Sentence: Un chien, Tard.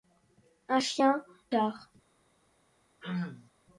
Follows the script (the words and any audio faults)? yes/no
no